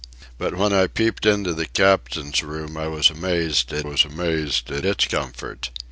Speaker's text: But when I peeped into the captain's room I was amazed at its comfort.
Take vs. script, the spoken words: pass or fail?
fail